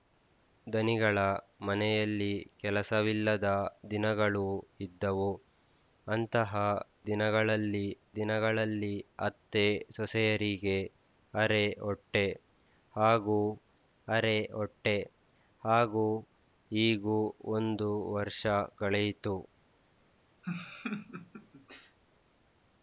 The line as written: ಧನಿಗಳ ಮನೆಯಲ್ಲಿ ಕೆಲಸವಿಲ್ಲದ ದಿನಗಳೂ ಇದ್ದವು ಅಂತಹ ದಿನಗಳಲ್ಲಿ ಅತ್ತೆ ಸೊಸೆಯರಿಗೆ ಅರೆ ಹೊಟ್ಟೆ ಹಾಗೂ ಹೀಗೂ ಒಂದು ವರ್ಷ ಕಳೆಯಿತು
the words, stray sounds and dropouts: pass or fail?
fail